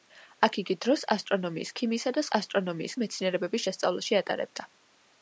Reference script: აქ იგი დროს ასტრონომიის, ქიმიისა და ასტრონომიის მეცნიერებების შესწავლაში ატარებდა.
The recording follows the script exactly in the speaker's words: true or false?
true